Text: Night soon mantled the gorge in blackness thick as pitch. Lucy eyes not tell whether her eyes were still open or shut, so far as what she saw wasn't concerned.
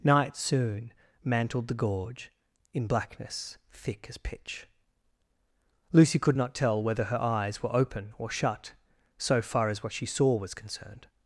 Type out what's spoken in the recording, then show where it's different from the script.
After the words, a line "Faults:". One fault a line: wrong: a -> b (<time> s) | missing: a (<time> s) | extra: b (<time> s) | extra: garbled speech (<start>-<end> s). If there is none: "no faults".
Night soon mantled the gorge in blackness thick as pitch. Lucy could not tell whether her eyes were open or shut, so far as what she saw was concerned.
Faults:
wrong: eyes -> could (6.2 s)
missing: still (7.7 s)
wrong: wasn't -> was (10.4 s)